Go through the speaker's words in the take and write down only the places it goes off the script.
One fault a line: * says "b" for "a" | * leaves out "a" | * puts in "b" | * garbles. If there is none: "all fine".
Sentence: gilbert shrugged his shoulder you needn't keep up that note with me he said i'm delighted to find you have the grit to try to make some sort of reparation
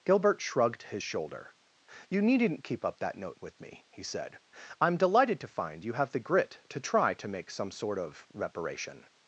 all fine